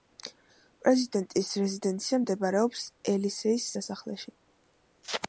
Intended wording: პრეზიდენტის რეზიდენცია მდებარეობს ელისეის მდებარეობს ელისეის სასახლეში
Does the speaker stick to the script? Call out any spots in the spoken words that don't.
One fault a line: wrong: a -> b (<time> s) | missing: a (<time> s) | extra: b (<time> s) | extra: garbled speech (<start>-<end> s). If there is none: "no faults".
missing: მდებარეობს ელისეის (3.7 s)